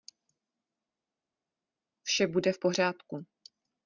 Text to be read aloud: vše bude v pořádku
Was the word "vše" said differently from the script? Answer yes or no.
no